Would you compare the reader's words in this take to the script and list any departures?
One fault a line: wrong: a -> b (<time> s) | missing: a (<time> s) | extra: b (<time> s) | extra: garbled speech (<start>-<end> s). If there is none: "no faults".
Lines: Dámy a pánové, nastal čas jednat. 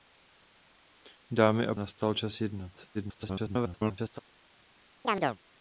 missing: pánové (1.8 s)
extra: garbled speech (2.9-4.2 s)